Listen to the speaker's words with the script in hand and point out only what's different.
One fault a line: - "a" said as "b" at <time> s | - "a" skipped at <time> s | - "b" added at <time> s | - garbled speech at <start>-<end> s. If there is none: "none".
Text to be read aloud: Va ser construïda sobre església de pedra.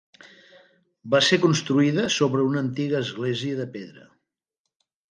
- "una antiga" added at 2.5 s